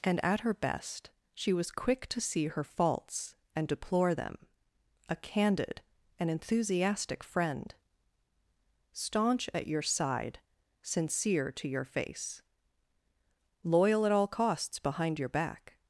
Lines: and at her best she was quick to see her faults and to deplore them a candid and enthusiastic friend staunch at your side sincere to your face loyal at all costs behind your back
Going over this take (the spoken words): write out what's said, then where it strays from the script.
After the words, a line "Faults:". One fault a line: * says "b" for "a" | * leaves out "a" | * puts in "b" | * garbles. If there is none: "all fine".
and at her best she was quick to see her faults and deplore them a candid and enthusiastic friend staunch at your side sincere to your face loyal at all costs behind your back
Faults:
* leaves out "to"